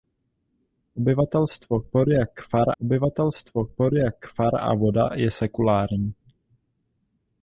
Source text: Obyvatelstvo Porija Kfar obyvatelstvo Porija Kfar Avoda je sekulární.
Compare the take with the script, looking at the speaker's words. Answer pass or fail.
pass